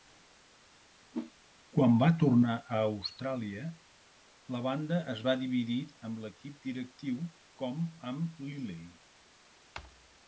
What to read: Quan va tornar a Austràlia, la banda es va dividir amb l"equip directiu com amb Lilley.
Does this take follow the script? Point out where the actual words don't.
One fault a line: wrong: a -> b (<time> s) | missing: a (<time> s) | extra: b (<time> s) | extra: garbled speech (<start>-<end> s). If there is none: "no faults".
no faults